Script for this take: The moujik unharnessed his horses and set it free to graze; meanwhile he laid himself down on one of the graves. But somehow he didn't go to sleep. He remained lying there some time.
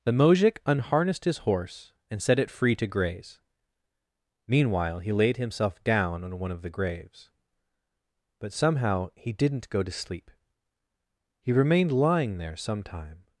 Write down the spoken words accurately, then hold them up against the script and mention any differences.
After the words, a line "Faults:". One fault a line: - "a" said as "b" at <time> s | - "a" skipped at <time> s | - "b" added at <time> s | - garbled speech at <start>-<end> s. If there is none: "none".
The moujik unharnessed his horse and set it free to graze; meanwhile he laid himself down on one of the graves. But somehow he didn't go to sleep. He remained lying there some time.
Faults:
- "horses" said as "horse" at 1.4 s